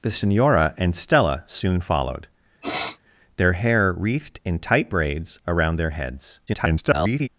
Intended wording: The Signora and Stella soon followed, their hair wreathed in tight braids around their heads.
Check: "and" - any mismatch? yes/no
no